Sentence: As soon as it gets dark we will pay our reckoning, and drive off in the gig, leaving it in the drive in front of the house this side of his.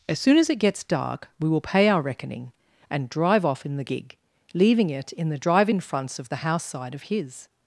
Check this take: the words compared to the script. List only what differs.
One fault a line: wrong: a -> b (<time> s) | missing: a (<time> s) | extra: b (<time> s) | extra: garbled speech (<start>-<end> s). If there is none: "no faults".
wrong: front -> fronts (5.8 s)
missing: this (6.6 s)